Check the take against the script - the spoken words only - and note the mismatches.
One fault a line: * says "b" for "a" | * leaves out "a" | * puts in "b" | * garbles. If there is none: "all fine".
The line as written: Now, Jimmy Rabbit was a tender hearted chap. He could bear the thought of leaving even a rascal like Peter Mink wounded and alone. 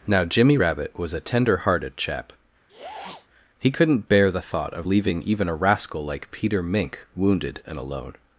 * says "couldn't" for "could"